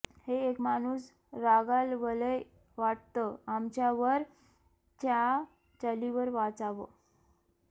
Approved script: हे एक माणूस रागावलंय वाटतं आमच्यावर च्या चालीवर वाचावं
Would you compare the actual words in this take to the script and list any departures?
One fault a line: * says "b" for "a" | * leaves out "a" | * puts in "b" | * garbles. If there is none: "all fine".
all fine